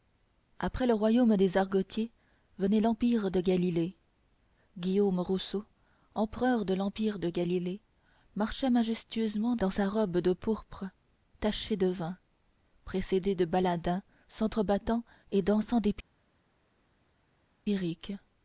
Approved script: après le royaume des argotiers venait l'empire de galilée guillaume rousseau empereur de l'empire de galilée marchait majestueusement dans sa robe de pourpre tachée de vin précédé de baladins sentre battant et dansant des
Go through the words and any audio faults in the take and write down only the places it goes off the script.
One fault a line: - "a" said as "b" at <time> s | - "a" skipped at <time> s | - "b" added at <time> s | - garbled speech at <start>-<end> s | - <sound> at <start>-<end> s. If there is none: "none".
none